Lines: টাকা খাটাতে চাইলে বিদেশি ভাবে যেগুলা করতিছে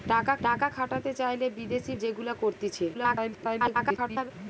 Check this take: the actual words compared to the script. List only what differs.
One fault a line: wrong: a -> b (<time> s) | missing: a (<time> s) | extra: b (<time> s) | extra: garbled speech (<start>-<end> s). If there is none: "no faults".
extra: টাকা (0.4 s)
missing: ভাবে (1.9 s)
extra: garbled speech (2.9-4.3 s)